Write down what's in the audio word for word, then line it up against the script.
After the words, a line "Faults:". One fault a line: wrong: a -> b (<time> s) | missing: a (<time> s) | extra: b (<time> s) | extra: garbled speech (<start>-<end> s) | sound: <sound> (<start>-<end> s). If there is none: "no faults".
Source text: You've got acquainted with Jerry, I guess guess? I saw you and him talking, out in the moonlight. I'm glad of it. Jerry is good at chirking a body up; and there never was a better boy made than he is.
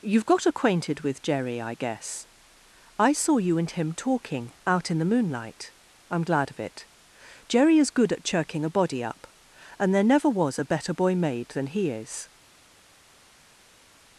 You've got acquainted with Jerry, I guess? I saw you and him talking, out in the moonlight. I'm glad of it. Jerry is good at chirking a body up; and there never was a better boy made than he is.
Faults:
missing: guess (2.3 s)